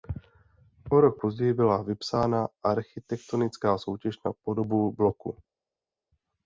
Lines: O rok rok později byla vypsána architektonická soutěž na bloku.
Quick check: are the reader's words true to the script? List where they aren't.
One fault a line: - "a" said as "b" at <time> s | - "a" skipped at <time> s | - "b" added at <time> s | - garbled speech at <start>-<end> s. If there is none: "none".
- "rok" skipped at 1.2 s
- "podobu" added at 4.4 s